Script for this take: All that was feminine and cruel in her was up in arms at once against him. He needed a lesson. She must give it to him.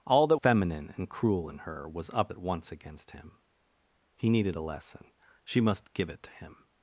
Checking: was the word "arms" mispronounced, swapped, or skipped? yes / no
yes